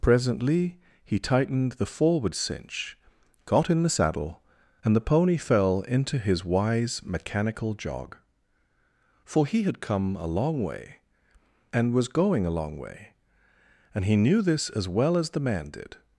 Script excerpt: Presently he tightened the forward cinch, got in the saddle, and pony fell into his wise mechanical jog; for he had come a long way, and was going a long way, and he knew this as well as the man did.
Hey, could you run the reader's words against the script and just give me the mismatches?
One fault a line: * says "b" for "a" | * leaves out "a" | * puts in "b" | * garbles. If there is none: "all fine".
* puts in "the"